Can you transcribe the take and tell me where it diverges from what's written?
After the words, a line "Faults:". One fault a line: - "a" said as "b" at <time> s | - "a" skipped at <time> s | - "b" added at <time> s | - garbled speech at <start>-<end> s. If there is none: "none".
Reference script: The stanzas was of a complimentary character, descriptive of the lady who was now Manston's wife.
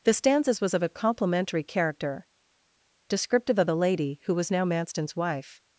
The stanzas was of a complimentary character, descriptive of the lady who was now Manston's wife.
Faults:
none